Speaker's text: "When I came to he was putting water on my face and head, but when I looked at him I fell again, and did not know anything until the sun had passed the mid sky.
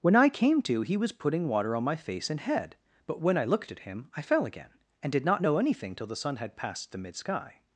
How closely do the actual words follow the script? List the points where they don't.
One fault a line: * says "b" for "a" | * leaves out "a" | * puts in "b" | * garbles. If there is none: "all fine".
* says "till" for "until"